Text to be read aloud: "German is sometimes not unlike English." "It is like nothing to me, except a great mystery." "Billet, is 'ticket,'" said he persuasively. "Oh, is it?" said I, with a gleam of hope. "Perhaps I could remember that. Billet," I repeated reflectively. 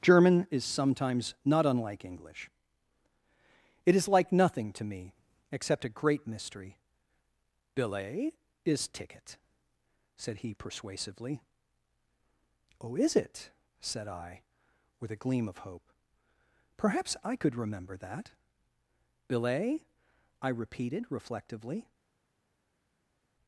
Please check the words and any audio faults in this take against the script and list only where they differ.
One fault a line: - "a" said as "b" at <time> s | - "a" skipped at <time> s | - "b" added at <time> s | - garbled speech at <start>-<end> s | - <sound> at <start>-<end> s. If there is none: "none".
none